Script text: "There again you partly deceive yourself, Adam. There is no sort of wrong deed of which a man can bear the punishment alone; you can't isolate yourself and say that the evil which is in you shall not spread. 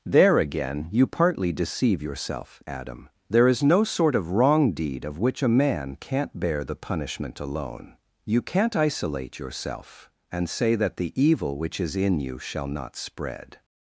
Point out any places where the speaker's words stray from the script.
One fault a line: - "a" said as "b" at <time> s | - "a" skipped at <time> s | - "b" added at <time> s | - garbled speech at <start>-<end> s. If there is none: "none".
- "can" said as "can't" at 6.0 s